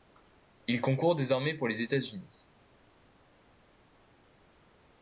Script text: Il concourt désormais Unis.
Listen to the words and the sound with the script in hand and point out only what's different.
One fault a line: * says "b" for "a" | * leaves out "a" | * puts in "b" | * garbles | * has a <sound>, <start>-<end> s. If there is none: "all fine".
* puts in "pour les États"